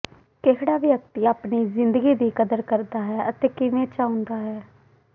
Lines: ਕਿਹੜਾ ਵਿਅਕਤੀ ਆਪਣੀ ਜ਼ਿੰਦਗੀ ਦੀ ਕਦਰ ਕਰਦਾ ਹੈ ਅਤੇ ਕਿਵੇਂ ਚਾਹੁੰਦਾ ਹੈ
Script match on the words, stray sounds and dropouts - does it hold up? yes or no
yes